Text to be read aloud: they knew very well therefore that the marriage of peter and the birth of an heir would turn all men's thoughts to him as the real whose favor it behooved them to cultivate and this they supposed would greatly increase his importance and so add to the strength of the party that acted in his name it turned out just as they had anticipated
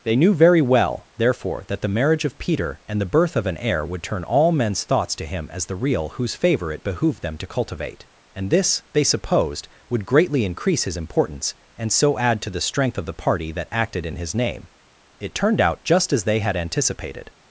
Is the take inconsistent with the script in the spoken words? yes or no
no